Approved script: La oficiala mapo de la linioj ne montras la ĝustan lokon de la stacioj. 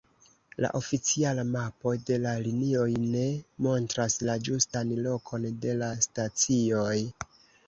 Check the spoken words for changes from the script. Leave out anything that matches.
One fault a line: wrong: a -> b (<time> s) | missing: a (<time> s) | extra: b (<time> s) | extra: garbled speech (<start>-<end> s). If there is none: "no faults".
no faults